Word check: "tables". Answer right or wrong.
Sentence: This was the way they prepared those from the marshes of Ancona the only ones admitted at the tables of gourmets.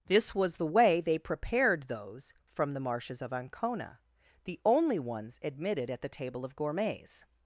wrong